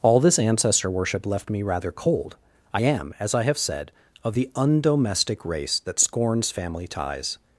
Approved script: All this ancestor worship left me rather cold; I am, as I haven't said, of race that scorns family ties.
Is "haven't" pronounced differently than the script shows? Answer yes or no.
yes